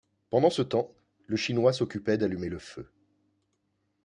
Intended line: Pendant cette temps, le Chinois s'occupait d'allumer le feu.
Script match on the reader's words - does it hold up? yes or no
no